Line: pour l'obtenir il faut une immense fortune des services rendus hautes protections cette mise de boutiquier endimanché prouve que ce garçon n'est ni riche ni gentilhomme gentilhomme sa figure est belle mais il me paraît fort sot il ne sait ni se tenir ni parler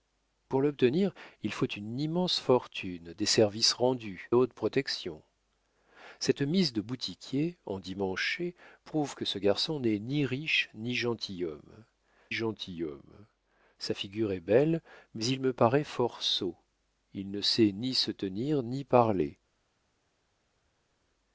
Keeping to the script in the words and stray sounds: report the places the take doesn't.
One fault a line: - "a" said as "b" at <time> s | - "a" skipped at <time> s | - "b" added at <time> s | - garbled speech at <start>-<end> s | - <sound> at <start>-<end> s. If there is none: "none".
none